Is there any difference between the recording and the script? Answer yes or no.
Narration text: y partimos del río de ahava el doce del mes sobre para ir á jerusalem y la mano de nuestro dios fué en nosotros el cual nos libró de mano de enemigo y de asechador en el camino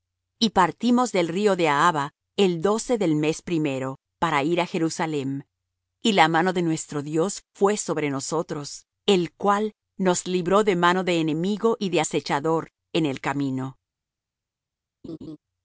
yes